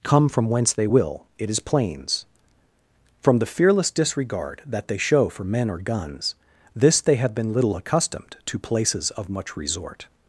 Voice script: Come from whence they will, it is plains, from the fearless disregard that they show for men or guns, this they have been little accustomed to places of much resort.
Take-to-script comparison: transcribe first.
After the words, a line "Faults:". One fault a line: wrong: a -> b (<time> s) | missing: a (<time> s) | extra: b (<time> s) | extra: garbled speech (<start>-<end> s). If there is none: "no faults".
Come from whence they will, it is plains, from the fearless disregard that they show for men or guns, this they have been little accustomed to places of much resort.
Faults:
no faults